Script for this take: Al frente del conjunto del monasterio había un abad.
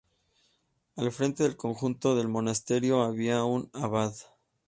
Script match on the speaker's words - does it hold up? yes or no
yes